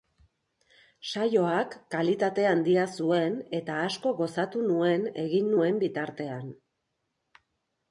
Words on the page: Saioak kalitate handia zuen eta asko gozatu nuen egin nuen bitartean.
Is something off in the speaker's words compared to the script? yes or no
no